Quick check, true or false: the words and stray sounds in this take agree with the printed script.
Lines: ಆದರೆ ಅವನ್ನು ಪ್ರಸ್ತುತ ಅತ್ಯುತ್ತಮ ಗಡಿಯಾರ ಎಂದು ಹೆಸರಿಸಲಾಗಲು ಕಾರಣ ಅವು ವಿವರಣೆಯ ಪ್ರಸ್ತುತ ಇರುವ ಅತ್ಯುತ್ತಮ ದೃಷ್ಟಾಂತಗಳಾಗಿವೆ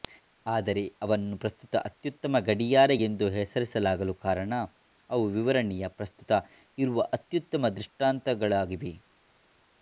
true